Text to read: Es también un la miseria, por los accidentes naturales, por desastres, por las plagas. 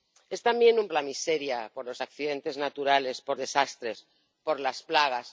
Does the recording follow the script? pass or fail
pass